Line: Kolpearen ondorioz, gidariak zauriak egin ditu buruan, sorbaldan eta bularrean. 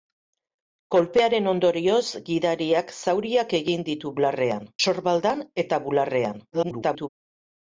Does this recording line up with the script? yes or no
no